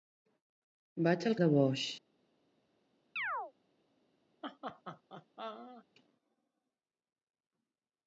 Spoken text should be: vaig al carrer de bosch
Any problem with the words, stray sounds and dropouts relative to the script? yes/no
yes